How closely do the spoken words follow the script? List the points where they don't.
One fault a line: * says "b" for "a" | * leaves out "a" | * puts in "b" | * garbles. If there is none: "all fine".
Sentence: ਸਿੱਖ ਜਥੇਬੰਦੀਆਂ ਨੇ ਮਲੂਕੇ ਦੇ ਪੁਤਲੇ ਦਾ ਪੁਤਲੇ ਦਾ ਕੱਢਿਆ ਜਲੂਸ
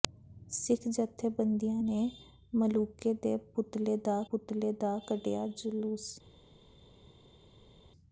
all fine